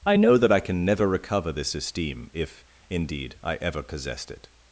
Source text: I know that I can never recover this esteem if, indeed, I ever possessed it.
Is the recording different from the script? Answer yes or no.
no